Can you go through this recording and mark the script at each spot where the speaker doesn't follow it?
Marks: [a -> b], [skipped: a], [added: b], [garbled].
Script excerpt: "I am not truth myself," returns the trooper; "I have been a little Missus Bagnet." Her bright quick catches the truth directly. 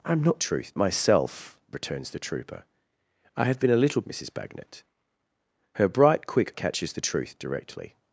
"I am not truth myself," returns the trooper; "I have been a little Missus Bagnet." Her bright quick catches the truth directly.